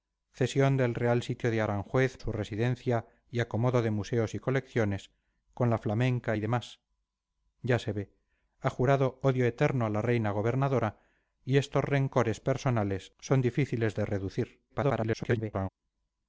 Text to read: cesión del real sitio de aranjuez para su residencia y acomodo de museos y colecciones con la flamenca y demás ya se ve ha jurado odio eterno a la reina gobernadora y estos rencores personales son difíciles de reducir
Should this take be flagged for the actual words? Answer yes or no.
yes